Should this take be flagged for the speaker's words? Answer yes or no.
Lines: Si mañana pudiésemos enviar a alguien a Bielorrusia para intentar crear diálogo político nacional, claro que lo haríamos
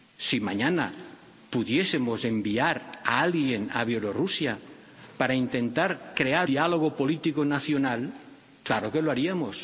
no